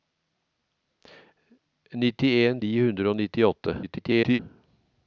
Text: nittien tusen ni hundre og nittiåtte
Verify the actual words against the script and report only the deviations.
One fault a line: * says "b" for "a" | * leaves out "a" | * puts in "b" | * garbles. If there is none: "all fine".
* leaves out "tusen"
* garbles